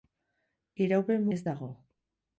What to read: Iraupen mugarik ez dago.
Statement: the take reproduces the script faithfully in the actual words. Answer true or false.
false